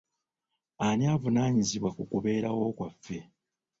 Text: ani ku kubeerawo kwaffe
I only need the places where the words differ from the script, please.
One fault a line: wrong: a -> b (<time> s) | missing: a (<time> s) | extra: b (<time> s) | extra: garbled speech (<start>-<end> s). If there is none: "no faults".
extra: avunaanyizibwa (1.1 s)